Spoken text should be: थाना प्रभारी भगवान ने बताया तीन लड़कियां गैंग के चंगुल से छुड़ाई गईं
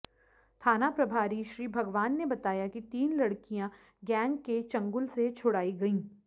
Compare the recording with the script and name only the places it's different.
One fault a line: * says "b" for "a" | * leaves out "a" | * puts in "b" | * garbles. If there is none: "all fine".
* puts in "श्री"
* puts in "कि"